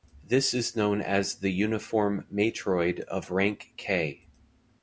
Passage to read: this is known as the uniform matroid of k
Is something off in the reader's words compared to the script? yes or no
yes